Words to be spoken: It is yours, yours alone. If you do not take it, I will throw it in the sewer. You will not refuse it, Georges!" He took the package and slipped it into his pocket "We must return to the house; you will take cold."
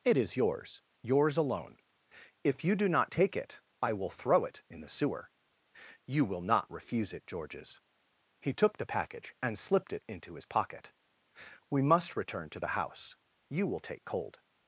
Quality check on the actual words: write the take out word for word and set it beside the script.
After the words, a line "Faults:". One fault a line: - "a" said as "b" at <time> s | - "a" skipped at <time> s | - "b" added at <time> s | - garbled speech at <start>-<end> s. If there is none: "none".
It is yours, yours alone. If you do not take it, I will throw it in the sewer. You will not refuse it, Georges!" He took the package and slipped it into his pocket "We must return to the house; you will take cold."
Faults:
none